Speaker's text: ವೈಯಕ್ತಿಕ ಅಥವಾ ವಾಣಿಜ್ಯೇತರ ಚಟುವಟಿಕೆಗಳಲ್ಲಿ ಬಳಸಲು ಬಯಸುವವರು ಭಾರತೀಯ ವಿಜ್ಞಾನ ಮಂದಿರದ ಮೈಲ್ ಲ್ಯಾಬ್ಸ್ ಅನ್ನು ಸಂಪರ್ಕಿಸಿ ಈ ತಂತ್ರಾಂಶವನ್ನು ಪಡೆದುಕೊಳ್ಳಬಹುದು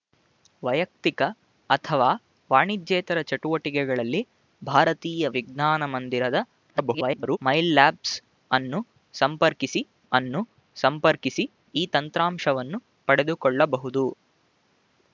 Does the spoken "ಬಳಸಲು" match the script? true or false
false